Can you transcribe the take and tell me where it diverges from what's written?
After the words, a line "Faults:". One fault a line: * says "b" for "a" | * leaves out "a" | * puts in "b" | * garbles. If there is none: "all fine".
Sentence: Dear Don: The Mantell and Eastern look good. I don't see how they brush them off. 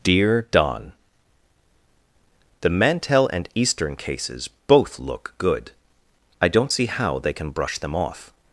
Dear Don: The Mantell and Eastern cases both look good. I don't see how they can brush them off.
Faults:
* puts in "cases both"
* puts in "can"